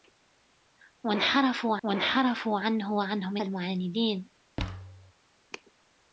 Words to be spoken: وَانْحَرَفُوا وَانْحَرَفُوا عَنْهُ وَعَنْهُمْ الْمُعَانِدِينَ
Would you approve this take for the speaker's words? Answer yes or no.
yes